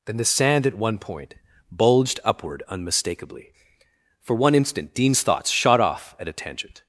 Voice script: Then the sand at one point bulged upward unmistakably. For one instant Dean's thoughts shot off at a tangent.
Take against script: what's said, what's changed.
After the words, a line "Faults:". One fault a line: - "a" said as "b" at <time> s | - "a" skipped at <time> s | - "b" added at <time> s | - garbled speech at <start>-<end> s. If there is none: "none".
Then the sand at one point bulged upward unmistakably. For one instant Dean's thoughts shot off at a tangent.
Faults:
none